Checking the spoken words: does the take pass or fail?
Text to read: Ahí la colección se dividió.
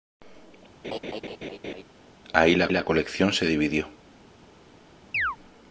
fail